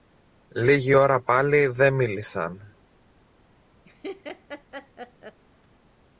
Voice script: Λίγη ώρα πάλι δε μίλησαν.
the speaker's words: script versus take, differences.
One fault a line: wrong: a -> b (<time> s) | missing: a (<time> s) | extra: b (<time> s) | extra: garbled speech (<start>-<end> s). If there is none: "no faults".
no faults